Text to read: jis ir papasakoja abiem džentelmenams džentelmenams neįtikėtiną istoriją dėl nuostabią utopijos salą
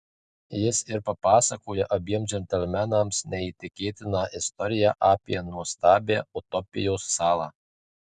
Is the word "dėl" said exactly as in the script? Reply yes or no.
no